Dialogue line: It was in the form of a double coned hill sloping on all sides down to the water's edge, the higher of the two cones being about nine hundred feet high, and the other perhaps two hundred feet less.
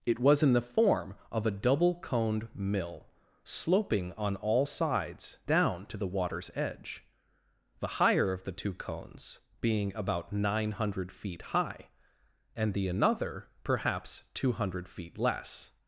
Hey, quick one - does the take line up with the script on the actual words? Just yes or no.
no